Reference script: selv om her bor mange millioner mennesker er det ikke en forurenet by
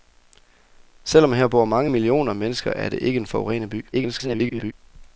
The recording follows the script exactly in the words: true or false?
false